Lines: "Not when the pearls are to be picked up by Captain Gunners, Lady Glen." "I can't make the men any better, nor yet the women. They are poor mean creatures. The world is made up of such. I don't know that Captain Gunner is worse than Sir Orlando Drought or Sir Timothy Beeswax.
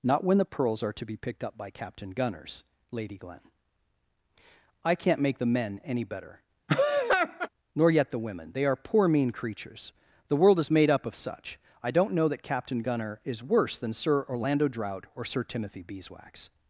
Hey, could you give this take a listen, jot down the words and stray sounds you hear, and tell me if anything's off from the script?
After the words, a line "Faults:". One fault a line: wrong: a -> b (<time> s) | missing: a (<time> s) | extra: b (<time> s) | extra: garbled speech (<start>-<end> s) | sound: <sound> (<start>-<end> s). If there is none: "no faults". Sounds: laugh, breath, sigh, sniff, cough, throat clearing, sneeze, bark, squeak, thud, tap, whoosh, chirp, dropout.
"Not when the pearls are to be picked up by Captain Gunners, Lady Glen." "I can't make the men any better, nor yet the women. They are poor mean creatures. The world is made up of such. I don't know that Captain Gunner is worse than Sir Orlando Drought or Sir Timothy Beeswax.
Faults:
sound: laugh (6.7-7.5 s)